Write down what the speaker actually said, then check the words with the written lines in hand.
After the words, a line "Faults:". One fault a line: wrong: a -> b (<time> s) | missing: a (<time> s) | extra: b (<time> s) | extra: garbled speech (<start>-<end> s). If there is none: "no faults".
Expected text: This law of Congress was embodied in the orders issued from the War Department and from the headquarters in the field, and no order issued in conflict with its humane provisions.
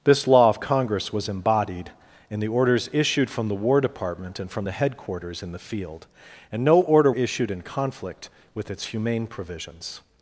This law of Congress was embodied in the orders issued from the War Department and from the headquarters in the field, and no order issued in conflict with its humane provisions.
Faults:
no faults